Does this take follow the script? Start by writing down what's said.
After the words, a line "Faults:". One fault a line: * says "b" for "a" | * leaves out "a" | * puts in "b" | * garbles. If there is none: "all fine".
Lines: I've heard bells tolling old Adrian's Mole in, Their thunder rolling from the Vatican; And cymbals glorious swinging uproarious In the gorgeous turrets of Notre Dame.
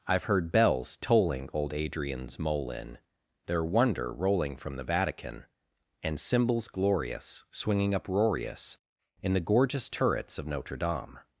I've heard bells tolling old Adrian's Mole in, Their wonder rolling from the Vatican; And cymbals glorious swinging uproarious In the gorgeous turrets of Notre Dame.
Faults:
* says "wonder" for "thunder"